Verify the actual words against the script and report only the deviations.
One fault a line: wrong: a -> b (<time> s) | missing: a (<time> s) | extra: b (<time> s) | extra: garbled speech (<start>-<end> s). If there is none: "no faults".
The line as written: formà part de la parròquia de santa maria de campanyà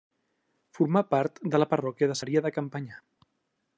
missing: santa (2.2 s)